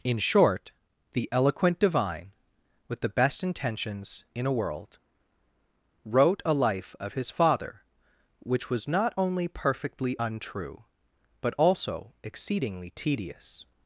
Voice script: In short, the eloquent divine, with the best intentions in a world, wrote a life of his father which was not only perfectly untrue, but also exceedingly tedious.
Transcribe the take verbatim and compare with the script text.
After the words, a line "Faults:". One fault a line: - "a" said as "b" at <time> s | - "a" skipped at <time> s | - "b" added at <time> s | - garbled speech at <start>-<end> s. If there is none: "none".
In short, the eloquent divine, with the best intentions in a world, wrote a life of his father which was not only perfectly untrue, but also exceedingly tedious.
Faults:
none